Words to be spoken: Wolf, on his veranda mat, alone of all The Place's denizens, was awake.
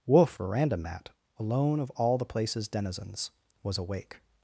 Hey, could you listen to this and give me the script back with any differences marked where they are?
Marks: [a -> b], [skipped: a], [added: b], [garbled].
Wolf, [skipped: on his] veranda mat, alone of all The Place's denizens, was awake.